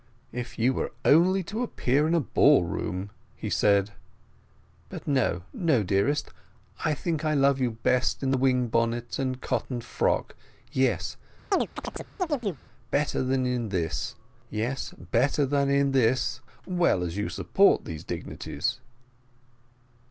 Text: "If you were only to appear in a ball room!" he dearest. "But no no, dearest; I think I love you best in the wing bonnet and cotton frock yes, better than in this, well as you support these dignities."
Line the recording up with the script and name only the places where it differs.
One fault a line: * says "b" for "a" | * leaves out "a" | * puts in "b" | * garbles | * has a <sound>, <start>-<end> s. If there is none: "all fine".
* says "said" for "dearest"
* has a chirp, 11.5-12.6 s